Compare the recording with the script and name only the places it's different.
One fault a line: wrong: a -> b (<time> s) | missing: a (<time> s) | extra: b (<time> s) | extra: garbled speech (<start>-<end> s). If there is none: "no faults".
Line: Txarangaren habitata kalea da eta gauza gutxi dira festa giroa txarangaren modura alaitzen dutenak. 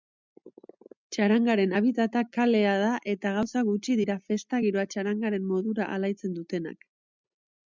no faults